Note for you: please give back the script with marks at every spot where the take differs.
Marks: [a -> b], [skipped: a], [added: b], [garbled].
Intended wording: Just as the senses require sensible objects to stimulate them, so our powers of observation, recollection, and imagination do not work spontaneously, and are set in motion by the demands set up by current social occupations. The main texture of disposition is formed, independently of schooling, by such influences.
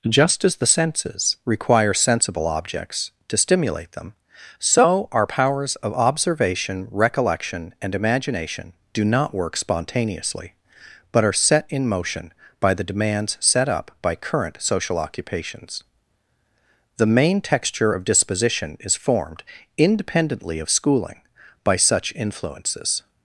Just as the senses require sensible objects to stimulate them, so our powers of observation, recollection, and imagination do not work spontaneously, [and -> but] are set in motion by the demands set up by current social occupations. The main texture of disposition is formed, independently of schooling, by such influences.